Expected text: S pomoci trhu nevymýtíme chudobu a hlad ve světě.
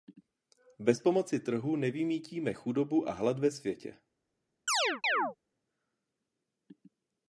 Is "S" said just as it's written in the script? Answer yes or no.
no